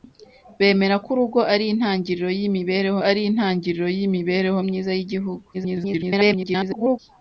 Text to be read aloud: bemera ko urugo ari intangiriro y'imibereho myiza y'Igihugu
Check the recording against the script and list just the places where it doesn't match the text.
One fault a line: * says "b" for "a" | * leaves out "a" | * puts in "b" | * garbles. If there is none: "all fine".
* puts in "ari intangiriro y'imibereho"
* garbles